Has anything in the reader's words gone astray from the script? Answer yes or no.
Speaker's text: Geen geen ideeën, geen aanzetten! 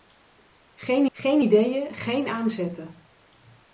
no